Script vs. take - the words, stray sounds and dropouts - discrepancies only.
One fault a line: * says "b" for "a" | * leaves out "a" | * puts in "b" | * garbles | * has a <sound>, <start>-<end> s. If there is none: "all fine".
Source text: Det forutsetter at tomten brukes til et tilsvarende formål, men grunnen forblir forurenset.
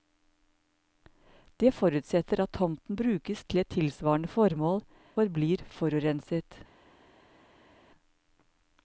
* leaves out "men grunnen"